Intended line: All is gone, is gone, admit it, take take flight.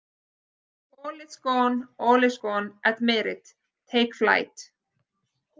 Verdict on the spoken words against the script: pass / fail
fail